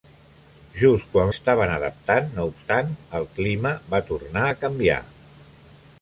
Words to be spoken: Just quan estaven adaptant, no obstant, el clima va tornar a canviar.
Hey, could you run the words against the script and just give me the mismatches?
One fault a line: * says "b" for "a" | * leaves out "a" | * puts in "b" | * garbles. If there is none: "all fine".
all fine